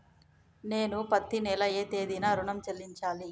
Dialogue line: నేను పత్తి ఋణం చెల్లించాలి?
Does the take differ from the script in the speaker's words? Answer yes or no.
yes